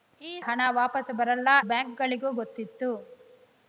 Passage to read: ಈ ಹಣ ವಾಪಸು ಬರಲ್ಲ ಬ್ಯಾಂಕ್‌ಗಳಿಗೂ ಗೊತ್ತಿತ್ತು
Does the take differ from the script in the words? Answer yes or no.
no